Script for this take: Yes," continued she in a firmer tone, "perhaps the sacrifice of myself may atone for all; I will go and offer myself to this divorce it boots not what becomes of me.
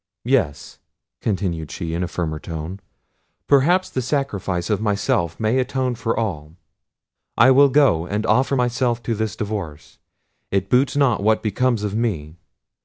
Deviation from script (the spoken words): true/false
false